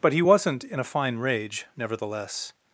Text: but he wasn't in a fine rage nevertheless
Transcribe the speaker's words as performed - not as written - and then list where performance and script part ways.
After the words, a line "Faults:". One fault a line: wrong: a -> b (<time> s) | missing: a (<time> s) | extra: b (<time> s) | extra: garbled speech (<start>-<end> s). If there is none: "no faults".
but he wasn't in a fine rage nevertheless
Faults:
no faults